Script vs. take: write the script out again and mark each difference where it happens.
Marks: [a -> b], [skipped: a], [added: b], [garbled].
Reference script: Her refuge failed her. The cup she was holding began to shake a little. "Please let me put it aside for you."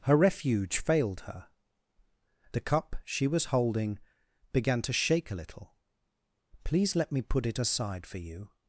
Her refuge failed her. The cup she was holding began to shake a little. "Please let me put it aside for you."